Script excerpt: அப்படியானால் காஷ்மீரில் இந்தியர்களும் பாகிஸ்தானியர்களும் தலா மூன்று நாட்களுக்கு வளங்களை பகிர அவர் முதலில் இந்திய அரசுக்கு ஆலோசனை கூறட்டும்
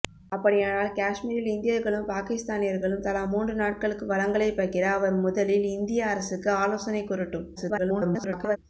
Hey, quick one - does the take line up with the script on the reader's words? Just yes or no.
no